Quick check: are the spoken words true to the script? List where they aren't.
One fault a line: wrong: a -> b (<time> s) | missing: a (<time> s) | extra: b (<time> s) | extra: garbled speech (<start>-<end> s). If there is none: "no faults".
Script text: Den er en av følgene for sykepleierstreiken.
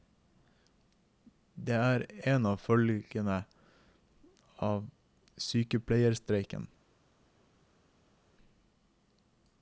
wrong: Den -> Det (1.6 s)
wrong: for -> av (4.6 s)